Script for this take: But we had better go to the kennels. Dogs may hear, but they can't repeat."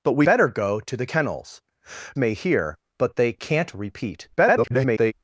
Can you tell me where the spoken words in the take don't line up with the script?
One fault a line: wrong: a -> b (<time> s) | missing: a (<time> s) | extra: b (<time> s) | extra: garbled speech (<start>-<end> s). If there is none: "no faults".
missing: had (0.3 s)
missing: Dogs (1.6 s)
extra: garbled speech (4.4-5.1 s)